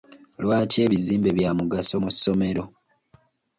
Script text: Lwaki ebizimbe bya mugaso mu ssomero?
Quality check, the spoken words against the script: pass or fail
pass